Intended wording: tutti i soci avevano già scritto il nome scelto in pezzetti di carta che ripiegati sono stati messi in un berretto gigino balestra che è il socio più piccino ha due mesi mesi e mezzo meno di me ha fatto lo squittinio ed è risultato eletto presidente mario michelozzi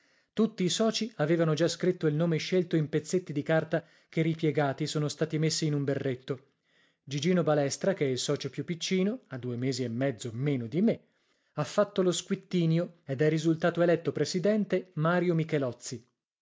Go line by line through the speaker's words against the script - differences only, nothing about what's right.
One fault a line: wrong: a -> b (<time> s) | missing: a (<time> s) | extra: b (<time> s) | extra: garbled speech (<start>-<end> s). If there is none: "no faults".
missing: mesi (9.8 s)